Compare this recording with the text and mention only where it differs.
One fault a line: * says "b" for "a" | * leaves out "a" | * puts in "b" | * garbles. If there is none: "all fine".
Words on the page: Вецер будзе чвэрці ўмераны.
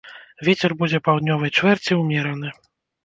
* puts in "паўднёвай"